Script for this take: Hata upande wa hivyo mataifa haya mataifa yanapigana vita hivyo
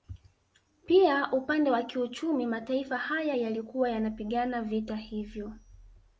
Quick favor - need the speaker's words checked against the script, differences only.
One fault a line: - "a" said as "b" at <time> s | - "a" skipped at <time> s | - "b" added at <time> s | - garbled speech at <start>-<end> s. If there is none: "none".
- "Hata" said as "Pia" at 0.8 s
- "hivyo" said as "kiuchumi" at 1.8 s
- "mataifa" said as "yalikuwa" at 3.3 s